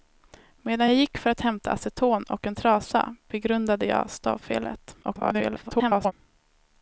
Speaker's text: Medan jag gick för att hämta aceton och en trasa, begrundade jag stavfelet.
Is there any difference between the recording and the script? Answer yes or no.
yes